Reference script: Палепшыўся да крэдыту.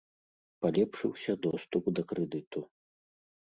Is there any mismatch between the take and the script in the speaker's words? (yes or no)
yes